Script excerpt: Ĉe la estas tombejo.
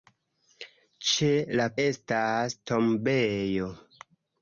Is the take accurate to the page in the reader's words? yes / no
yes